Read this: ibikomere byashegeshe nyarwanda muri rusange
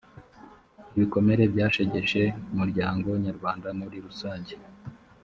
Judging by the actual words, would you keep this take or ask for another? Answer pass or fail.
fail